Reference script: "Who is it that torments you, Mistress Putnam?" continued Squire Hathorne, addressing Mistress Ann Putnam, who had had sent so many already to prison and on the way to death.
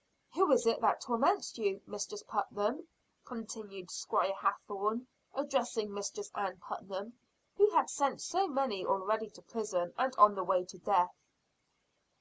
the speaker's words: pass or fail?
fail